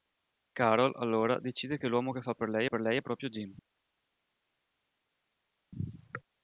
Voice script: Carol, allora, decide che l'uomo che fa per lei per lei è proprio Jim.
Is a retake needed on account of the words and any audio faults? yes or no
no